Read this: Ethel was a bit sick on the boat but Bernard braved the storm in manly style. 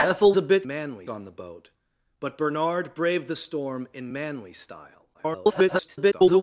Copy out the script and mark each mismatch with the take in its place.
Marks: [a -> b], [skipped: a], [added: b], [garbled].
Ethel [skipped: was] a bit [sick -> manly] on the boat but Bernard braved the storm in manly style. [garbled]